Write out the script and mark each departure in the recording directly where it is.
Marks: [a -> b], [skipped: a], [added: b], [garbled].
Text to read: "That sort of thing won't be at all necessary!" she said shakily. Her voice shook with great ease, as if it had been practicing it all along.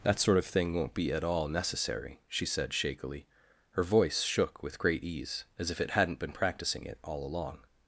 "That sort of thing won't be at all necessary!" she said shakily. Her voice shook with great ease, as if it [had -> hadn't] been practicing it all along.